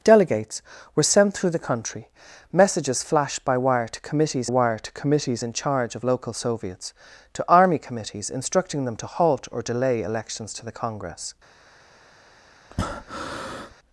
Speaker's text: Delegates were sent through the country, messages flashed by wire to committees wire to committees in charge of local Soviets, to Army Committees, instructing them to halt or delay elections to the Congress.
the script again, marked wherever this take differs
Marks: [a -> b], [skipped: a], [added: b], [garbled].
Delegates were sent through the country, messages flashed by wire to committees wire to committees in charge of local Soviets, to Army Committees, instructing them to halt or delay elections to the Congress.